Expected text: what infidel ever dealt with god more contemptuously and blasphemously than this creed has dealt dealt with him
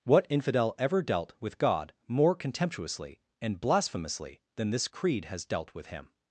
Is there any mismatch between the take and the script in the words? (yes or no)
yes